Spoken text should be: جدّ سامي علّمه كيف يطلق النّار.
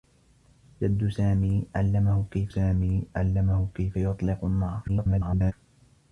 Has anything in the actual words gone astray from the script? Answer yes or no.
yes